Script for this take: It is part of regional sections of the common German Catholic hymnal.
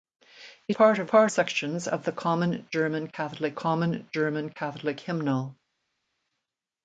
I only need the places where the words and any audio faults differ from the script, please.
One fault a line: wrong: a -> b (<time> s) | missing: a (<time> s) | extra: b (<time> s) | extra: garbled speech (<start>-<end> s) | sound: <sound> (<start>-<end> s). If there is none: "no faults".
missing: is (0.8 s)
wrong: regional -> part (1.0 s)
extra: common German Catholic (3.5 s)